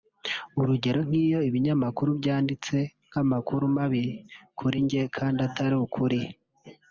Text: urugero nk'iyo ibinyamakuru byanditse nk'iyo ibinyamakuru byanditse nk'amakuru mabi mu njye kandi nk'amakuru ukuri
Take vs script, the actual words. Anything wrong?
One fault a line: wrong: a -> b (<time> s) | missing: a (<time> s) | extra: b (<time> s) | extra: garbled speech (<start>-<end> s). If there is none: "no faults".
missing: nk'iyo ibinyamakuru byanditse (2.8 s)
wrong: mu -> kuri (4.6 s)
wrong: nk'amakuru -> atari (5.5 s)